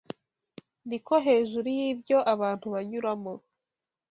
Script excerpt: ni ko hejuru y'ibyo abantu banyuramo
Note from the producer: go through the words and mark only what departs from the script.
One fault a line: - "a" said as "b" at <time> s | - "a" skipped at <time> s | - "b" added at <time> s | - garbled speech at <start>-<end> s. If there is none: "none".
none